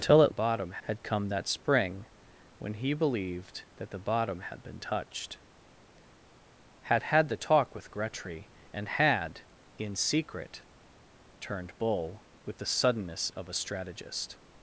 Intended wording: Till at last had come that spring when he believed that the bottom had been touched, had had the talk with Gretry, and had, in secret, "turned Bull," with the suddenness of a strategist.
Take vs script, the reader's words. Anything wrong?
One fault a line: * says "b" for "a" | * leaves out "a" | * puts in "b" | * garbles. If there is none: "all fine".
* says "bottom" for "last"